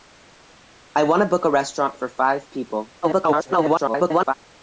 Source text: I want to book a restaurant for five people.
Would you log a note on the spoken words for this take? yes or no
yes